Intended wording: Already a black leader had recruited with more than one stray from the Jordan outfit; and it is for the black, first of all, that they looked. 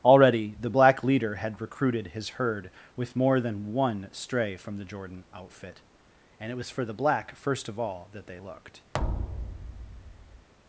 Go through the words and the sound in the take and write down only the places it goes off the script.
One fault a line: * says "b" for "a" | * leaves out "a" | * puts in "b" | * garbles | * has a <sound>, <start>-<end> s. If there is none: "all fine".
* says "the" for "a"
* puts in "his herd"
* says "was" for "is"
* has a thud, 8.9-10.5 s